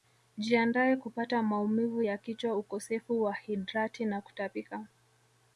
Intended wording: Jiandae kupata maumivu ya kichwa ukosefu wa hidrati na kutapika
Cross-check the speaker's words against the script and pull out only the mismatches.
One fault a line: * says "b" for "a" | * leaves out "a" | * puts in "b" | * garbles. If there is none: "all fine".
all fine